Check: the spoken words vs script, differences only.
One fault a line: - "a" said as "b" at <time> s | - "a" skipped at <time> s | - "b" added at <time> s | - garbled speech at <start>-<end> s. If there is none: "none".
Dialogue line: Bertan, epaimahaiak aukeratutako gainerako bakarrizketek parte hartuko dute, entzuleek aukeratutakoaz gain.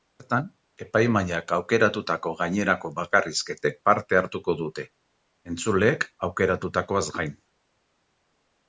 none